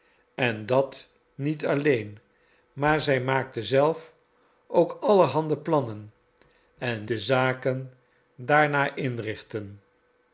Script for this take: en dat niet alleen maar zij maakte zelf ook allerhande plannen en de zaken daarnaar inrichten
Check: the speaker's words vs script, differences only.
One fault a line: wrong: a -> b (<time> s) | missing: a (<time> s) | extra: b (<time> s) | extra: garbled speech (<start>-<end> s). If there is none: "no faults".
no faults